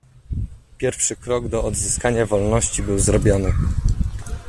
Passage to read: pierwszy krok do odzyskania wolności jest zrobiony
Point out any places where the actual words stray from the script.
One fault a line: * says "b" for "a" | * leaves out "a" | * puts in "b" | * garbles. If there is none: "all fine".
* says "był" for "jest"